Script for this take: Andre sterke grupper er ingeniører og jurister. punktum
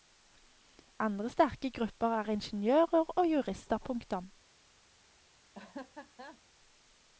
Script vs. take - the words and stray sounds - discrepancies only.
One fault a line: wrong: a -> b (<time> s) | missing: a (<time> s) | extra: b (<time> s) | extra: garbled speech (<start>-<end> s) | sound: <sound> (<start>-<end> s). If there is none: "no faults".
sound: laugh (5.5-6.4 s)